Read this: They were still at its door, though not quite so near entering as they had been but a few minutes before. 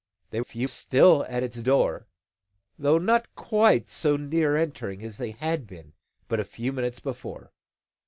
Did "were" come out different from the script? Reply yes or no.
yes